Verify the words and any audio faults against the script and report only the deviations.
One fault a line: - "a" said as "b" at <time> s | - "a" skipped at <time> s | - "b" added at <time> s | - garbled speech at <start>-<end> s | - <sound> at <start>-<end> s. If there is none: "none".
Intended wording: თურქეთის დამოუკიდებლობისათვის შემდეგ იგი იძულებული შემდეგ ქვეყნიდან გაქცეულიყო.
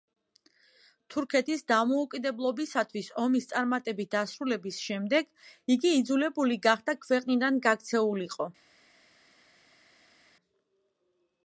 - "ომის წარმატებით დასრულების" added at 3.2 s
- "შემდეგ" said as "გახდა" at 6.7 s